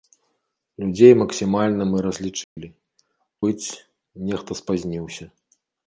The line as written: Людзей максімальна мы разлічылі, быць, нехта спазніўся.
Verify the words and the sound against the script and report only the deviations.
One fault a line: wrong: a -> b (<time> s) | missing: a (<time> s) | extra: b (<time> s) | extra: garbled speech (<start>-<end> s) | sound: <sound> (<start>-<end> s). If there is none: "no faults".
sound: dropout (2.4-2.6 s)